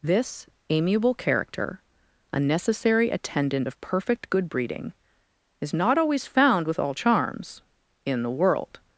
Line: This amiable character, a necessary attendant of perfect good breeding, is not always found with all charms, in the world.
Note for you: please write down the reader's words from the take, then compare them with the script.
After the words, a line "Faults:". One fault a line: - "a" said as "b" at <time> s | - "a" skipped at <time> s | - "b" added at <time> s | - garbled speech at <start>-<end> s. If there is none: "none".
This amiable character, a necessary attendant of perfect good breeding, is not always found with all charms, in the world.
Faults:
none